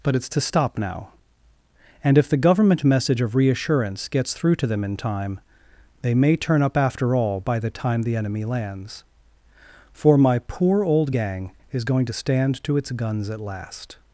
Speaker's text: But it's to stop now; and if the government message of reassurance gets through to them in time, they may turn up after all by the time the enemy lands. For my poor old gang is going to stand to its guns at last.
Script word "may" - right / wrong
right